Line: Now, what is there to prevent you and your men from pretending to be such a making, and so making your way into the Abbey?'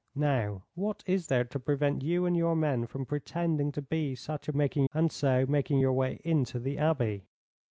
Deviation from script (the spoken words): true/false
false